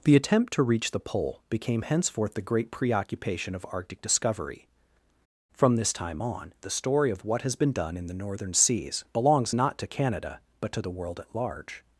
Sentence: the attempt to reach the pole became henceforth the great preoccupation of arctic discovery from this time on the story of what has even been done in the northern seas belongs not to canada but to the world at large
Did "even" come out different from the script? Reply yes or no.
yes